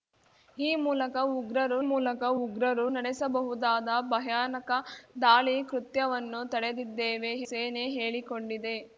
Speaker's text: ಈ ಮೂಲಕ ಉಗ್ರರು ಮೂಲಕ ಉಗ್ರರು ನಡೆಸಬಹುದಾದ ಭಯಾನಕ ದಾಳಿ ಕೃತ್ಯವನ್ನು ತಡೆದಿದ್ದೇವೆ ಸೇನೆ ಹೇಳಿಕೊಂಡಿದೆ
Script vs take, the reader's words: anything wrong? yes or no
no